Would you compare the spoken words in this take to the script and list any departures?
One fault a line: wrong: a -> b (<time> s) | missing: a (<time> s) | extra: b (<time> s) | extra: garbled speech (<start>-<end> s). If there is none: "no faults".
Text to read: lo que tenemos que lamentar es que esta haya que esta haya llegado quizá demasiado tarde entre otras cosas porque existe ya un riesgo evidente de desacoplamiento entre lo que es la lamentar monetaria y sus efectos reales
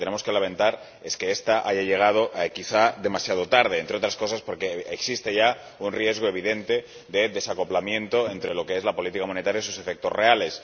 missing: que esta haya (1.8 s)
wrong: lamentar -> política (8.9 s)